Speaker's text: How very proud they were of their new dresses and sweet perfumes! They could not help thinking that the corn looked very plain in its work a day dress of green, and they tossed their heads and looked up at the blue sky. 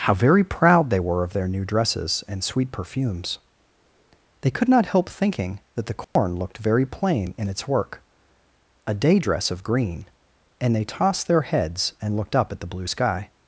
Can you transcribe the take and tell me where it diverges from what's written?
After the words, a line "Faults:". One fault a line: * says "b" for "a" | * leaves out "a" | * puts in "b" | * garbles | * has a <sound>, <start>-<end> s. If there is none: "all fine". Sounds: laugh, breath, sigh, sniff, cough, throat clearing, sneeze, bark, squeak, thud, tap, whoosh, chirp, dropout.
How very proud they were of their new dresses and sweet perfumes! They could not help thinking that the corn looked very plain in its work a day dress of green, and they tossed their heads and looked up at the blue sky.
Faults:
* has a dropout, 6.0-6.2 s